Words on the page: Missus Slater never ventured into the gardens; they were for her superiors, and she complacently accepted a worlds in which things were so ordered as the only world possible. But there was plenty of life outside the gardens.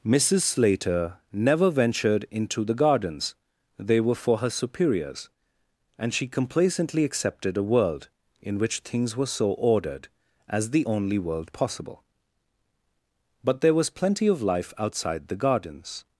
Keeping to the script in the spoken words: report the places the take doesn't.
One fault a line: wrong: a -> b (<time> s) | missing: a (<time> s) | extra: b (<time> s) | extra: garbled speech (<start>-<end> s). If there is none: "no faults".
wrong: worlds -> world (7.6 s)